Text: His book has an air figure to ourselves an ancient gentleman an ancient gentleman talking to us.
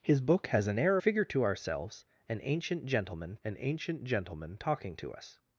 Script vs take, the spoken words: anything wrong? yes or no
no